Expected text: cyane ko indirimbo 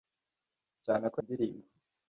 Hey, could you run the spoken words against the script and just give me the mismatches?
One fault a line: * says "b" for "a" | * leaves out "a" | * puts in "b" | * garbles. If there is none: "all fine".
all fine